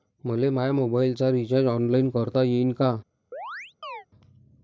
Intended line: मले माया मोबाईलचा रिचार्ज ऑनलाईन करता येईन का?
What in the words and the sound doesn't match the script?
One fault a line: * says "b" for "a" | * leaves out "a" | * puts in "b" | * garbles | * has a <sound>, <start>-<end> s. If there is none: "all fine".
* has a chirp, 3.3-4.1 s